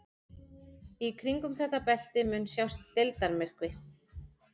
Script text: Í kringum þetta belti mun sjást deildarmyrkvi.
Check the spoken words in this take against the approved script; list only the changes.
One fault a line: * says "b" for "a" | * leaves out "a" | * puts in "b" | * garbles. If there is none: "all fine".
all fine